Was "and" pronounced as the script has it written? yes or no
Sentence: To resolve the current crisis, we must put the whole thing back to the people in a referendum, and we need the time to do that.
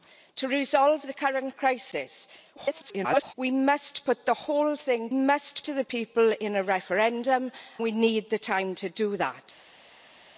no